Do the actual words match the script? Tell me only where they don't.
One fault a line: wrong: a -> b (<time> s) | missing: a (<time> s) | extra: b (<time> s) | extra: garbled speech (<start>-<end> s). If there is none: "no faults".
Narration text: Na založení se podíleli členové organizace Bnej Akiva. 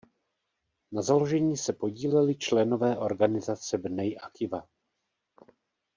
no faults